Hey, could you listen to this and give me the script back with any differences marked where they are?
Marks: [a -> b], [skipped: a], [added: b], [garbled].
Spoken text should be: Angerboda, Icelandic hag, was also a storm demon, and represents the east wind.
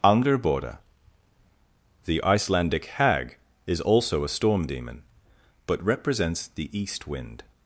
Angerboda, [added: the] Icelandic hag, [was -> is] also a storm demon, [and -> but] represents the east wind.